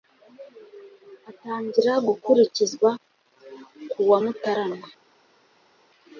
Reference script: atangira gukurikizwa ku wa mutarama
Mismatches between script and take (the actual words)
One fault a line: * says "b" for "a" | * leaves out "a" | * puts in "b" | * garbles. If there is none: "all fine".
all fine